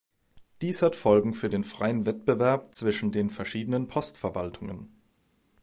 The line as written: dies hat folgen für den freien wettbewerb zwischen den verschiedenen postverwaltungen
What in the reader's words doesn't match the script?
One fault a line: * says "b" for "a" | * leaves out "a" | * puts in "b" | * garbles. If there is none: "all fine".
all fine